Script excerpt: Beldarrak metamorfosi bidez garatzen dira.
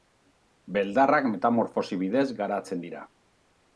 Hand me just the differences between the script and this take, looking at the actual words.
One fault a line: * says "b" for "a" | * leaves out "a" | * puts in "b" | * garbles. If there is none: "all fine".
all fine